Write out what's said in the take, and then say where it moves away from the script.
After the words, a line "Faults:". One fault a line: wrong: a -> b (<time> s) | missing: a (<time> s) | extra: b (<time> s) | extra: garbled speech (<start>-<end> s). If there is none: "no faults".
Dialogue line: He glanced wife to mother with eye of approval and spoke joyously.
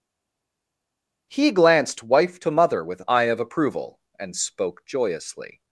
He glanced wife to mother with eye of approval and spoke joyously.
Faults:
no faults